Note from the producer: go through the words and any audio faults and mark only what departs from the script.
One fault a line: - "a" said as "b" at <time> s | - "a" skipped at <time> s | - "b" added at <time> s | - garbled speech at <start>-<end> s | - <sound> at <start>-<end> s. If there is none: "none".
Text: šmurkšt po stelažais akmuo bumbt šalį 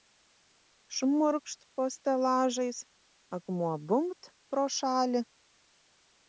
- "pro" added at 4.5 s